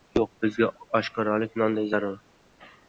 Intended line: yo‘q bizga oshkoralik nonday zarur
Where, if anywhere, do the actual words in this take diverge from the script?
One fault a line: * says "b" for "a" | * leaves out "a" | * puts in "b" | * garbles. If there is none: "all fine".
all fine